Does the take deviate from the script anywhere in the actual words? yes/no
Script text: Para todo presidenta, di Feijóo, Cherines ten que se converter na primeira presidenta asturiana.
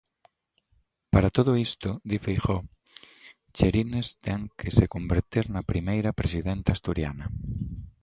yes